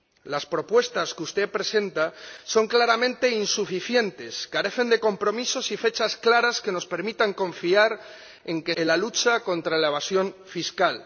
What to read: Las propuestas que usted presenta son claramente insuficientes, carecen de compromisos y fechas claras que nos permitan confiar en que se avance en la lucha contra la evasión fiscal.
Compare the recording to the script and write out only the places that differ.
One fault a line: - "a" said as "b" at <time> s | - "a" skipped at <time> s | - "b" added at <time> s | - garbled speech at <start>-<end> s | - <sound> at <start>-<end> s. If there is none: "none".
- "se avance" skipped at 8.8 s